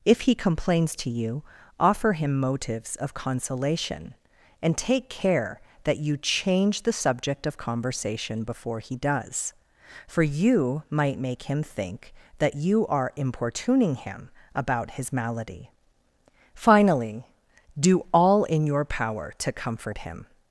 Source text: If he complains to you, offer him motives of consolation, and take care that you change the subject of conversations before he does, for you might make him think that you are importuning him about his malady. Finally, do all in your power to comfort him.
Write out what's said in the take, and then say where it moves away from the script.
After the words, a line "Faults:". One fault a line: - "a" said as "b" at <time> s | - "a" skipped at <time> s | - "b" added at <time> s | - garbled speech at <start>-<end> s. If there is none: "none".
If he complains to you, offer him motives of consolation, and take care that you change the subject of conversation before he does, for you might make him think that you are importuning him about his malady. Finally, do all in your power to comfort him.
Faults:
- "conversations" said as "conversation" at 7.6 s